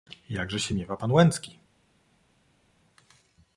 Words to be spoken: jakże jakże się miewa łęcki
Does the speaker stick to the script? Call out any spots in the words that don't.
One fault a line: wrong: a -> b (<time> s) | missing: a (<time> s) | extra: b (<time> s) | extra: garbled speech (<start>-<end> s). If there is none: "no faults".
missing: jakże (0.6 s)
extra: pan (0.9 s)